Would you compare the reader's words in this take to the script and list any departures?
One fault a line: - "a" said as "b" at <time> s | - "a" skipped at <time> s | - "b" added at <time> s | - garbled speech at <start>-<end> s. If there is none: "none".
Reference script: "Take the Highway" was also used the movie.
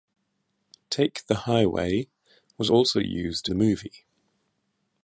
none